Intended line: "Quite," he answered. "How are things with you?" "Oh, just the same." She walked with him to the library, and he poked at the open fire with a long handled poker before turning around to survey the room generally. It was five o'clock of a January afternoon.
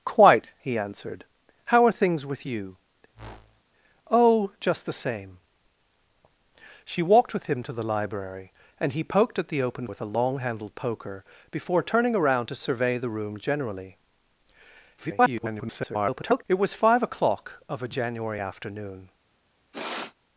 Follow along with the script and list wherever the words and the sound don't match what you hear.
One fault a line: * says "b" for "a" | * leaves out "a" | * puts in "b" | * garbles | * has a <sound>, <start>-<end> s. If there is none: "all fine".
* has a whoosh, 3.1-3.6 s
* leaves out "fire"
* garbles
* has a sniff, 19.7-20.1 s